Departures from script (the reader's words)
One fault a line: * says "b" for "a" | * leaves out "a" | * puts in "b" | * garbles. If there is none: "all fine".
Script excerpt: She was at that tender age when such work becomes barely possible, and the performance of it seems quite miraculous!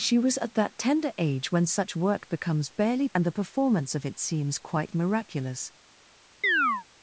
* leaves out "possible"